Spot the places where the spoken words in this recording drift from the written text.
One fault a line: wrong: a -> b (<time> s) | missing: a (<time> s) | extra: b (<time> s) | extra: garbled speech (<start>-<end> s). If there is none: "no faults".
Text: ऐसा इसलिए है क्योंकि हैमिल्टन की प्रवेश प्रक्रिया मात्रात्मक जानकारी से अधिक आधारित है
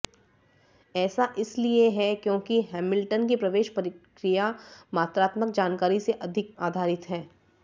no faults